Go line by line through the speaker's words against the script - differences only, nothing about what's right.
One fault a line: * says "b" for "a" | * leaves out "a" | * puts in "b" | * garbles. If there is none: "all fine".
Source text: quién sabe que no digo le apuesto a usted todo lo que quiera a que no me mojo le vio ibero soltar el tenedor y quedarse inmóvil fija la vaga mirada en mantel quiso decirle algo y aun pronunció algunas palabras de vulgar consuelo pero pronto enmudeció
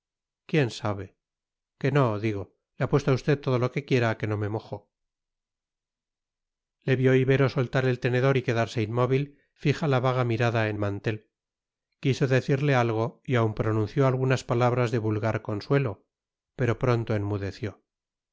all fine